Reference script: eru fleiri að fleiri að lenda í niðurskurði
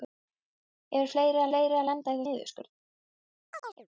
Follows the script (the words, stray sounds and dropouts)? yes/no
no